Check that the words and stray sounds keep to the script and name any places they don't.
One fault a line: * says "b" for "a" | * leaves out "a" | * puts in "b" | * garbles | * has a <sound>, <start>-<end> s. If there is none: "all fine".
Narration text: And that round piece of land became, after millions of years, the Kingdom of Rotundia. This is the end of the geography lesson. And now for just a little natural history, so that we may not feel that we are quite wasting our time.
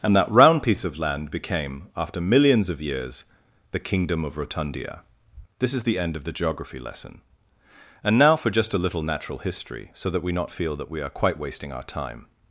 * leaves out "may"